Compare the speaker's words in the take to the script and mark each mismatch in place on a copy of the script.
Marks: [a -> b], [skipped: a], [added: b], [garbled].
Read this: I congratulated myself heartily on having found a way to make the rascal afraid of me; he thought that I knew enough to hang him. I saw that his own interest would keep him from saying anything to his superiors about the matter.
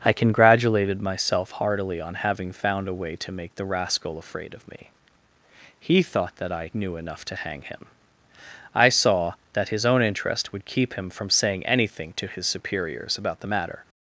I congratulated myself heartily on having found a way to make the rascal afraid of me; he thought that I knew enough to hang him. I saw that his own interest would keep him from saying anything to his superiors about the matter.